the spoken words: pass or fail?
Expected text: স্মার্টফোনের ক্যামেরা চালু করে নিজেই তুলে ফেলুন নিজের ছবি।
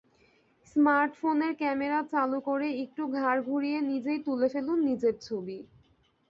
fail